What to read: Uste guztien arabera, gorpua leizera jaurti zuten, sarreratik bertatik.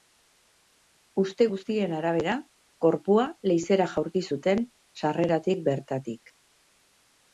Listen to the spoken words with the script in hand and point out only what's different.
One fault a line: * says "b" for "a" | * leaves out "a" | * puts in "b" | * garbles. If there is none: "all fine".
all fine